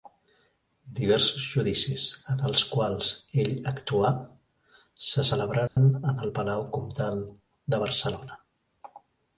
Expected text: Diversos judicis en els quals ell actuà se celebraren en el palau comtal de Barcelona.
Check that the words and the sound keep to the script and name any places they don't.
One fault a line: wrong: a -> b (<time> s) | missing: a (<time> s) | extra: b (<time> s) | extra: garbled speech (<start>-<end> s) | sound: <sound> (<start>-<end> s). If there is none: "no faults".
sound: dropout (5.7-5.8 s)